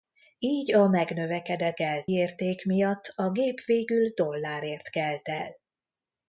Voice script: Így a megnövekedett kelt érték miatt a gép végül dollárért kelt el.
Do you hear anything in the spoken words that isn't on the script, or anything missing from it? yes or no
no